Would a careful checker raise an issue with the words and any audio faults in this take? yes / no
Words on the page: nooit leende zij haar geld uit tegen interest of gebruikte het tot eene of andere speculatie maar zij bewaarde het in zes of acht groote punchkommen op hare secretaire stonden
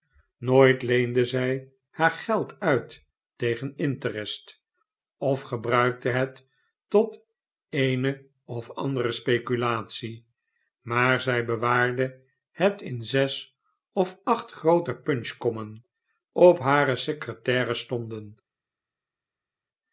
no